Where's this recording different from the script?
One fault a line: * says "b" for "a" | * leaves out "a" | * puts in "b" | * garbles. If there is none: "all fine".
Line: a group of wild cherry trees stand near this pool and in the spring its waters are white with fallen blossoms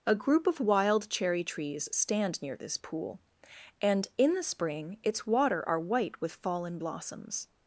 * says "water" for "waters"